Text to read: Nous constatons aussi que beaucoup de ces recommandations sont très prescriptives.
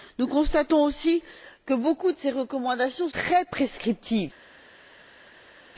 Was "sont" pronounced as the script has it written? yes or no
no